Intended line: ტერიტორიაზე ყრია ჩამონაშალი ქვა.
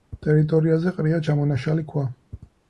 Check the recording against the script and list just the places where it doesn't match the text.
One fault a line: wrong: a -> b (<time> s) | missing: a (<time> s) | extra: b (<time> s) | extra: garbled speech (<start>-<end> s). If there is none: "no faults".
no faults